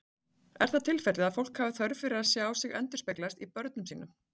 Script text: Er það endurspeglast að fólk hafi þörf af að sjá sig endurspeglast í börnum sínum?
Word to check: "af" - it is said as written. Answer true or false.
false